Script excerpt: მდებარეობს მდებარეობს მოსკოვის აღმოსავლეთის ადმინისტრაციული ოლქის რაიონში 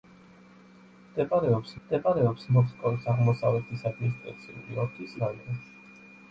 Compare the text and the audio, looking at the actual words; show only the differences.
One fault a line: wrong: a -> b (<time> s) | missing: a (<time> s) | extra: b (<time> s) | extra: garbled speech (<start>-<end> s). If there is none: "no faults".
no faults